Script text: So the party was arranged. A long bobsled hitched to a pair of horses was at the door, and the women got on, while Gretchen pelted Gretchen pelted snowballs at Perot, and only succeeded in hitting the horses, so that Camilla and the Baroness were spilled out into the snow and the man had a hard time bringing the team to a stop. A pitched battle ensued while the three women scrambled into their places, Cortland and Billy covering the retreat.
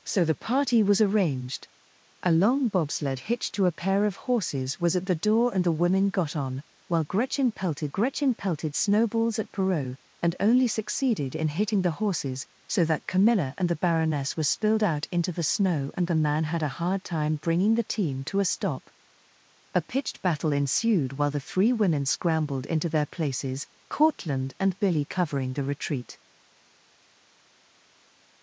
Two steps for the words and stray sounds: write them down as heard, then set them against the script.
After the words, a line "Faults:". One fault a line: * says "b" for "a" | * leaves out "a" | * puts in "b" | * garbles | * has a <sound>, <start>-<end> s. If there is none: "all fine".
So the party was arranged. A long bobsled hitched to a pair of horses was at the door, and the women got on, while Gretchen pelted Gretchen pelted snowballs at Perot, and only succeeded in hitting the horses, so that Camilla and the Baroness were spilled out into the snow and the man had a hard time bringing the team to a stop. A pitched battle ensued while the three women scrambled into their places, Cortland and Billy covering the retreat.
Faults:
all fine